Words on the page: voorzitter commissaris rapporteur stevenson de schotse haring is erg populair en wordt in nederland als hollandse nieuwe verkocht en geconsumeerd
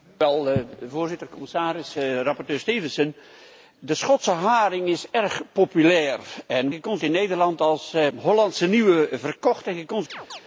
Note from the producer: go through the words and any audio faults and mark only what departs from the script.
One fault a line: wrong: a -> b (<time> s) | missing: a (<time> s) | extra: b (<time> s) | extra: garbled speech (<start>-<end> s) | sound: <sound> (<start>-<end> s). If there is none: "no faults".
wrong: wordt -> geconsumeerd (6.7 s)
sound: chirp (10.1-10.4 s)